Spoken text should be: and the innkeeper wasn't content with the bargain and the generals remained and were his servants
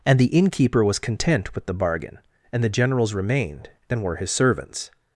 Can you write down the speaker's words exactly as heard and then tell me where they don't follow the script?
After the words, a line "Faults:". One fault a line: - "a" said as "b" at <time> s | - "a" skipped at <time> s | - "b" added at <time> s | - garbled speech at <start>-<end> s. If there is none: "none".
and the innkeeper was content with the bargain and the generals remained and were his servants
Faults:
- "wasn't" said as "was" at 0.8 s